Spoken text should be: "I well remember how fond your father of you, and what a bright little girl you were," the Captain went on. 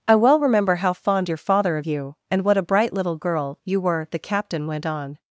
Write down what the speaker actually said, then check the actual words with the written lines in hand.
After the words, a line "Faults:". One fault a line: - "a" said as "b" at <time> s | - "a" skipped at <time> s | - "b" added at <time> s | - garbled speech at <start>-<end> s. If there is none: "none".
"I well remember how fond your father of you, and what a bright little girl you were," the Captain went on.
Faults:
none